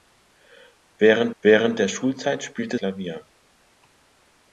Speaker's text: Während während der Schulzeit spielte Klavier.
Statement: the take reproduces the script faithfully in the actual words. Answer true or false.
true